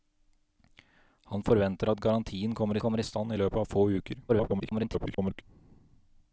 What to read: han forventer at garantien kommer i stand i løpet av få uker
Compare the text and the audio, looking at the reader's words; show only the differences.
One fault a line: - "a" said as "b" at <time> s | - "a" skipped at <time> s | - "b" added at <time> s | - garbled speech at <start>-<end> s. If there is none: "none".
- "kommer" added at 2.8 s
- garbled speech at 4.3-5.4 s